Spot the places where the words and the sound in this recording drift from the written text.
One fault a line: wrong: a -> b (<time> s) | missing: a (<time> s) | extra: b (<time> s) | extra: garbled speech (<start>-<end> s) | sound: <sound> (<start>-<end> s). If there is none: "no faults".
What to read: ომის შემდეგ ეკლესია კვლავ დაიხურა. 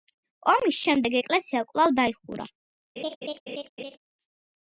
sound: laugh (3.0-4.0 s)